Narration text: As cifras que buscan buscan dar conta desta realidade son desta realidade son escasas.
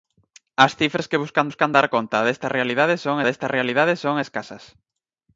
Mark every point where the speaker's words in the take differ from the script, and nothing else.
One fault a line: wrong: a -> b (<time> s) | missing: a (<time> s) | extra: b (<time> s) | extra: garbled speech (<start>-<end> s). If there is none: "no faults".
no faults